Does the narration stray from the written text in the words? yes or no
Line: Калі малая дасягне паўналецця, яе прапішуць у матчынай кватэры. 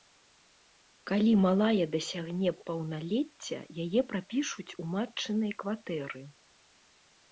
no